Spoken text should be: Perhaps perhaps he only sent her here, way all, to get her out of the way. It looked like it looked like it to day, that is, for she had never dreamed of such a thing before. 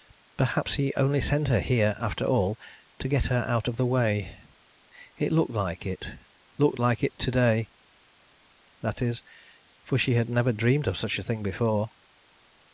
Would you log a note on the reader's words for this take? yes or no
yes